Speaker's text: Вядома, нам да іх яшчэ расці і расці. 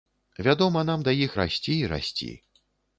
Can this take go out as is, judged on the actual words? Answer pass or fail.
fail